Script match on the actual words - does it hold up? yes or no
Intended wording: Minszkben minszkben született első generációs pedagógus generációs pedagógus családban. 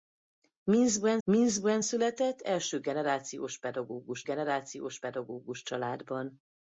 yes